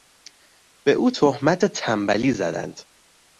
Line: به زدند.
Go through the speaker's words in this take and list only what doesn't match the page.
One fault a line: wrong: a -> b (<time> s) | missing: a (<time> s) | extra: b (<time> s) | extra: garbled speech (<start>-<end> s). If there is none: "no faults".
extra: او تهمت تنبلی (0.9 s)